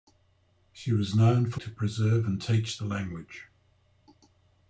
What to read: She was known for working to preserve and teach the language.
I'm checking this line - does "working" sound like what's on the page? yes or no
no